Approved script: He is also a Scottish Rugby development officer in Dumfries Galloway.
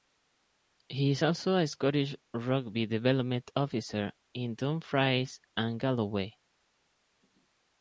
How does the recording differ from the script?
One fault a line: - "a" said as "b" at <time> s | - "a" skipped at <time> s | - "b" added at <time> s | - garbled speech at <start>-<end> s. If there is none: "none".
- "and" added at 5.6 s